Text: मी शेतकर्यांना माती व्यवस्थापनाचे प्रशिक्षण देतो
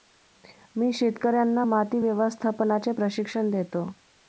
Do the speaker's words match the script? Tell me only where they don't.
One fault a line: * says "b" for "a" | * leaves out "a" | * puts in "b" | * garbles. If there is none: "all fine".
all fine